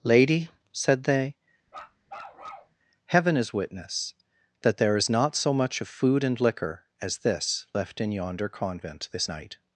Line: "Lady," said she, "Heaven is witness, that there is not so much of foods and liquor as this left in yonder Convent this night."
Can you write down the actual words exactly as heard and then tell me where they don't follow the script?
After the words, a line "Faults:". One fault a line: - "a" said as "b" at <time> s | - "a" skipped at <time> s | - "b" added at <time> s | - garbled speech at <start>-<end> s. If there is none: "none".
"Lady," said they, "Heaven is witness, that there is not so much of food and liquor as this left in yonder Convent this night."
Faults:
- "she" said as "they" at 1.0 s
- "foods" said as "food" at 5.9 s